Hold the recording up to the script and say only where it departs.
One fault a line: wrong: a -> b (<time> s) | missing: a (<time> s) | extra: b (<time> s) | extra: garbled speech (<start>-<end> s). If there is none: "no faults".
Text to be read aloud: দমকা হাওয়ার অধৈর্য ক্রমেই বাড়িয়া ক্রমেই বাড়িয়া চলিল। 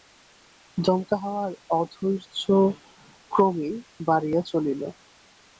missing: ক্রমেই বাড়িয়া (4.4 s)